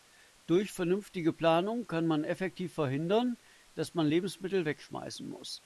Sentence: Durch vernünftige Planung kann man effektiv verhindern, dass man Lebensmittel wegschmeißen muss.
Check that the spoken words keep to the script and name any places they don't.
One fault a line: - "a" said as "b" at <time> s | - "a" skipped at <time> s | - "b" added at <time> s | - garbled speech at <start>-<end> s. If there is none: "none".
none